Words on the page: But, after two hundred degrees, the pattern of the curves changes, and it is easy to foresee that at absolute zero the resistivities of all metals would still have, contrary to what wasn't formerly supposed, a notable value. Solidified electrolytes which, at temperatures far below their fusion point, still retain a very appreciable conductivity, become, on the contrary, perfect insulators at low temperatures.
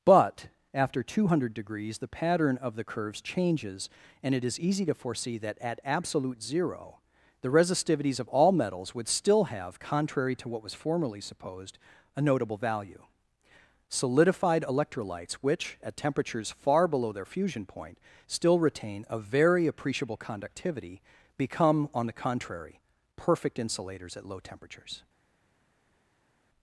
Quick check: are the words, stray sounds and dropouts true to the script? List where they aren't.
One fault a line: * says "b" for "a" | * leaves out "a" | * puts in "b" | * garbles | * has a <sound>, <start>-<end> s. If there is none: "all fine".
* says "was" for "wasn't"